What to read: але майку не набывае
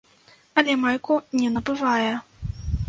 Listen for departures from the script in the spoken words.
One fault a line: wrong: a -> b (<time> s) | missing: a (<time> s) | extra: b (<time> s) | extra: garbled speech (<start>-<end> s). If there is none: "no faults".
no faults